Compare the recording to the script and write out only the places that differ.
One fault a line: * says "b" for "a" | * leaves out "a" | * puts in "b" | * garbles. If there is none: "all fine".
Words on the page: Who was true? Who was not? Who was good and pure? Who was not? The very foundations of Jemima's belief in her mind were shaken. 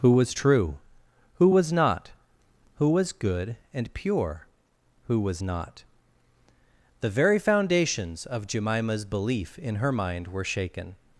all fine